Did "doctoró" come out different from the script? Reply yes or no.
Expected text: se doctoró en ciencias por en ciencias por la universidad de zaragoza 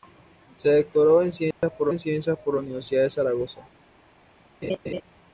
no